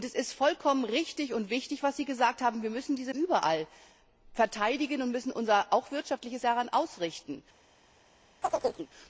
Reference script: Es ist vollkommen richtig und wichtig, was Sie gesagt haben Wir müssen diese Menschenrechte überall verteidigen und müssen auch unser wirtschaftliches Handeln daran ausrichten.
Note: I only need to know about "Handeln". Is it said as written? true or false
false